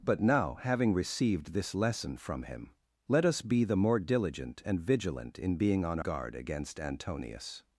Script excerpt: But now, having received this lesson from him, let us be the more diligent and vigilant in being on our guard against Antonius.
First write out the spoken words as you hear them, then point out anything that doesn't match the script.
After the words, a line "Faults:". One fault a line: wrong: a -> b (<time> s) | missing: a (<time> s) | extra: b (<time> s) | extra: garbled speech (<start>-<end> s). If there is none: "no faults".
But now, having received this lesson from him, let us be the more diligent and vigilant in being on guard against Antonius.
Faults:
missing: our (6.0 s)